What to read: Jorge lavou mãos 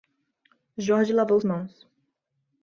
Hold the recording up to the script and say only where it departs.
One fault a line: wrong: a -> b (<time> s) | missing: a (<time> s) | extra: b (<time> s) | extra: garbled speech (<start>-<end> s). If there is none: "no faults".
no faults